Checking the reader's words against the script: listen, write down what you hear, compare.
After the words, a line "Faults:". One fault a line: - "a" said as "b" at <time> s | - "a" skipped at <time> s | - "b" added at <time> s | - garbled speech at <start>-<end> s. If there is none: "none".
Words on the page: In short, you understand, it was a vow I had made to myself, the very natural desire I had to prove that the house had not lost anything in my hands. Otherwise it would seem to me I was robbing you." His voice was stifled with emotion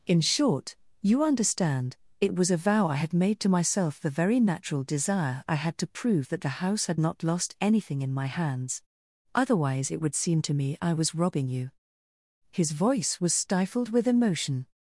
In short, you understand, it was a vow I had made to myself, the very natural desire I had to prove that the house had not lost anything in my hands. Otherwise it would seem to me I was robbing you." His voice was stifled with emotion
Faults:
none